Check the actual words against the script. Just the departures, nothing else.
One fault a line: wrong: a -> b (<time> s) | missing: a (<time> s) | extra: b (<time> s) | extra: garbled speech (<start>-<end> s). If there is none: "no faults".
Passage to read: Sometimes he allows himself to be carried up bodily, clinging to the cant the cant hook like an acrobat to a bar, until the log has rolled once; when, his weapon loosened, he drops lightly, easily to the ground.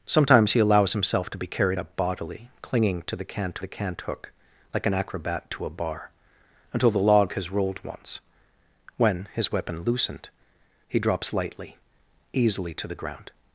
no faults